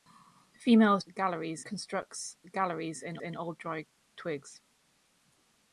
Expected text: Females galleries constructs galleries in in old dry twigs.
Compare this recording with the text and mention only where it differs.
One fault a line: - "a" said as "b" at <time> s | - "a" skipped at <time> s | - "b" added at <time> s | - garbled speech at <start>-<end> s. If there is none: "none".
none